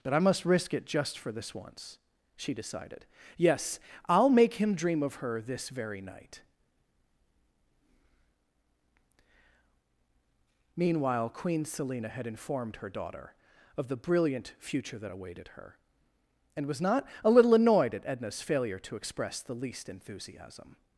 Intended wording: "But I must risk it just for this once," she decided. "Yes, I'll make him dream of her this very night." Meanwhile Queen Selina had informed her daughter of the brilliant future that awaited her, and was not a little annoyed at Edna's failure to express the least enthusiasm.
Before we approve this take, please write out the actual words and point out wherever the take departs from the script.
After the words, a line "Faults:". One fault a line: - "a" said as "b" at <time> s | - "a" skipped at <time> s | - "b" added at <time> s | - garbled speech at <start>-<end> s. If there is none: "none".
"But I must risk it just for this once," she decided. "Yes, I'll make him dream of her this very night." Meanwhile Queen Selina had informed her daughter of the brilliant future that awaited her, and was not a little annoyed at Edna's failure to express the least enthusiasm.
Faults:
none